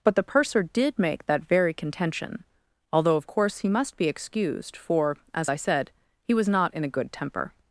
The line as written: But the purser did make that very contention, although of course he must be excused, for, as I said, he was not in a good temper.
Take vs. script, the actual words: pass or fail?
pass